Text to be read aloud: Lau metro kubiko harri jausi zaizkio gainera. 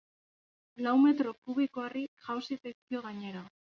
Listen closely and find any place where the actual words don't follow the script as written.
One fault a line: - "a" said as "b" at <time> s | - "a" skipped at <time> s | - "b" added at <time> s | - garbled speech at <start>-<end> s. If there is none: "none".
none